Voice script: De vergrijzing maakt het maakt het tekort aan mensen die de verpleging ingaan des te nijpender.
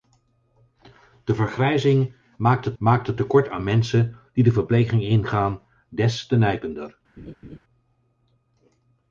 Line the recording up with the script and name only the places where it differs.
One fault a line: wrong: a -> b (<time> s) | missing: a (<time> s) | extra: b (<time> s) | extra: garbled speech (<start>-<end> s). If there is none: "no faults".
no faults